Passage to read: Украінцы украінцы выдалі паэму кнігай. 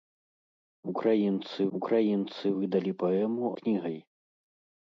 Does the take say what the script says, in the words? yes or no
yes